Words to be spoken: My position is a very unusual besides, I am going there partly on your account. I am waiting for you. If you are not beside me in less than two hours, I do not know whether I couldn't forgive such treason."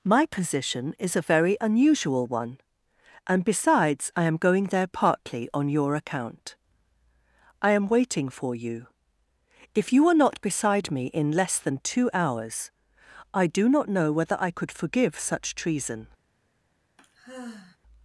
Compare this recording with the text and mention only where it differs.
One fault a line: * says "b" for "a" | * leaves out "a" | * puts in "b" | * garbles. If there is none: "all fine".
* puts in "one and"
* says "could" for "couldn't"